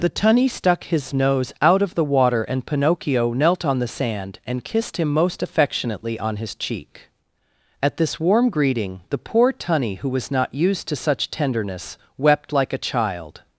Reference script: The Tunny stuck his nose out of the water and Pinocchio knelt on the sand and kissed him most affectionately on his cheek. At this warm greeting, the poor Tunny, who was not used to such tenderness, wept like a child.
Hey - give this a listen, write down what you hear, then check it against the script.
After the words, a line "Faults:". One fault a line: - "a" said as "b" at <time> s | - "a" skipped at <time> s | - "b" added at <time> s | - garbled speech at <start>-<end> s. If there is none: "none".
The Tunny stuck his nose out of the water and Pinocchio knelt on the sand and kissed him most affectionately on his cheek. At this warm greeting, the poor Tunny, who was not used to such tenderness, wept like a child.
Faults:
none